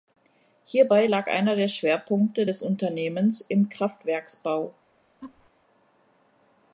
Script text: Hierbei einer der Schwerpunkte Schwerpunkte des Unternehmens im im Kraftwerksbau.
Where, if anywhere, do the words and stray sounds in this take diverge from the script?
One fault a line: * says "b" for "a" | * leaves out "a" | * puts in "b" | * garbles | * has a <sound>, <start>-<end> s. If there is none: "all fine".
* puts in "lag"
* leaves out "Schwerpunkte"
* leaves out "im"
* has a laugh, 5.2-5.5 s